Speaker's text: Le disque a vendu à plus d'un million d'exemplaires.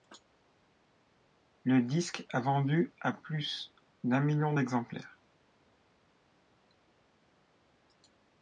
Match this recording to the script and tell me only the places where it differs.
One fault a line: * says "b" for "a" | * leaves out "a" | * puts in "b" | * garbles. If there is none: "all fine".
all fine